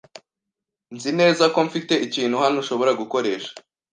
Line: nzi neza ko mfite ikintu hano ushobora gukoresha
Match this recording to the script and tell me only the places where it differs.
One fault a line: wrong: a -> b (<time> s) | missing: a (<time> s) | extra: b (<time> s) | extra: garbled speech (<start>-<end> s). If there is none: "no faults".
no faults